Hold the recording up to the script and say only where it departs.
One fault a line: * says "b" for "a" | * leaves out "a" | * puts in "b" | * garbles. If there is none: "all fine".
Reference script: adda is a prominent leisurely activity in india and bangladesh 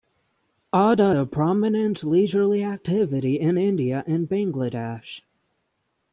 * leaves out "is"